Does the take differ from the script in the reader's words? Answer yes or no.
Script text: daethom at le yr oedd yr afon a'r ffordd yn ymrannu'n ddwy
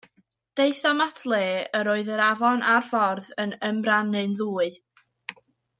no